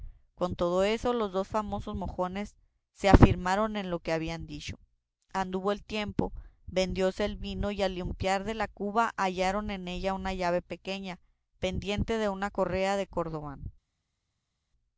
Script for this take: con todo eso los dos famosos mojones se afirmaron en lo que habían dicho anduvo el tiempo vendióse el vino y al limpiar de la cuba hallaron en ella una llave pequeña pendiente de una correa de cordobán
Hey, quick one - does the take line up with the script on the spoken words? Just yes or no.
yes